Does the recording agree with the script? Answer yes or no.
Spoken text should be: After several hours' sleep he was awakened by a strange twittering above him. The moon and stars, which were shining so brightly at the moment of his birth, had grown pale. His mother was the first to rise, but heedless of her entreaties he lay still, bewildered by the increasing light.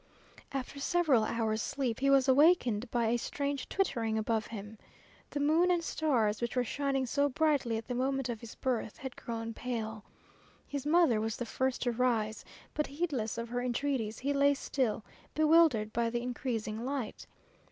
yes